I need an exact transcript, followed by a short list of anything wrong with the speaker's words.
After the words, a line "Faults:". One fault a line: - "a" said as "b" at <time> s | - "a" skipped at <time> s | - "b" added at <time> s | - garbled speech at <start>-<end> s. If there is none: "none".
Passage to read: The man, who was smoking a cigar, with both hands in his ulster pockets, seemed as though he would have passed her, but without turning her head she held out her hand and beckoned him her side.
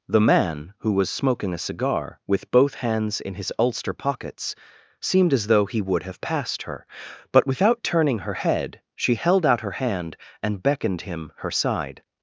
The man, who was smoking a cigar, with both hands in his ulster pockets, seemed as though he would have passed her, but without turning her head she held out her hand and beckoned him her side.
Faults:
none